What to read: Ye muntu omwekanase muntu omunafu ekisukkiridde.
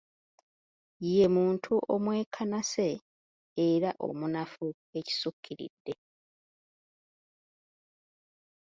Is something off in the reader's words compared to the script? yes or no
yes